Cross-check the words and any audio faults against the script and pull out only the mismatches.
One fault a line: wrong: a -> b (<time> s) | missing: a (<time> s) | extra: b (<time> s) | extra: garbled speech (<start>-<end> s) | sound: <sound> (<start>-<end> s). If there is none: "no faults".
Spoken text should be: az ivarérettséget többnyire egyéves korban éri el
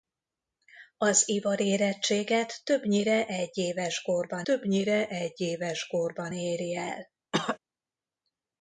extra: többnyire egyéves korban (4.4 s)
sound: cough (7.3-7.6 s)